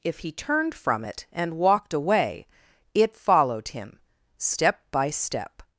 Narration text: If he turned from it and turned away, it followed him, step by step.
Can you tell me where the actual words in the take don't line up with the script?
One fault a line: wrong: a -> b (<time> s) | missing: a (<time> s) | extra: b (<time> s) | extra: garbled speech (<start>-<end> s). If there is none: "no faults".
wrong: turned -> walked (1.6 s)